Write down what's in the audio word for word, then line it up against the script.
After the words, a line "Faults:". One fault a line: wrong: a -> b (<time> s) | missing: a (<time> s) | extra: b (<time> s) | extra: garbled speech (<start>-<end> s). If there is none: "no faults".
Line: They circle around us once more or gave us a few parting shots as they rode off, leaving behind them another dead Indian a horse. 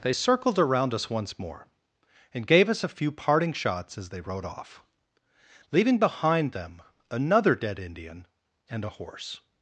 They circled around us once more and gave us a few parting shots as they rode off, leaving behind them another dead Indian and a horse.
Faults:
wrong: circle -> circled (0.1 s)
wrong: or -> and (2.3 s)
extra: and (8.7 s)